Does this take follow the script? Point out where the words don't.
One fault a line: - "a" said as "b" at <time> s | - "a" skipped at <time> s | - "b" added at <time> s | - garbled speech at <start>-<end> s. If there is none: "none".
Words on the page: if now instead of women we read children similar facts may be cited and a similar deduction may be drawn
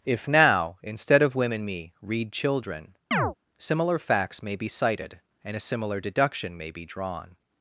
- "we" said as "me" at 1.6 s